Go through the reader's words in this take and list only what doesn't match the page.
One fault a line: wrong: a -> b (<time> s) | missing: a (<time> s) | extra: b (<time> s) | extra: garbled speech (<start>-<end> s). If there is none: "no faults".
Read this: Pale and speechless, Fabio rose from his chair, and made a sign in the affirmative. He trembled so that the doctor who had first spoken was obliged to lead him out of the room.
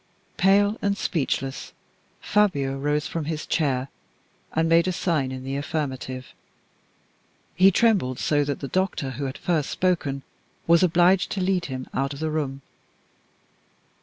no faults